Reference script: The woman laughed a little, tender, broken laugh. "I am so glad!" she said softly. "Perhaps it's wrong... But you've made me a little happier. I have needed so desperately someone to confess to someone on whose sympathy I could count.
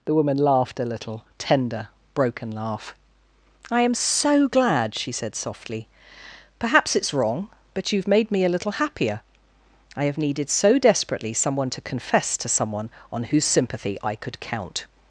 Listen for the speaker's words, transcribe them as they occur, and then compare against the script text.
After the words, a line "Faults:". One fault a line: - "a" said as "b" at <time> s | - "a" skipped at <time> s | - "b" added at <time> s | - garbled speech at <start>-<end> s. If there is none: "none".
The woman laughed a little, tender, broken laugh. "I am so glad!" she said softly. "Perhaps it's wrong... But you've made me a little happier. I have needed so desperately someone to confess to someone on whose sympathy I could count.
Faults:
none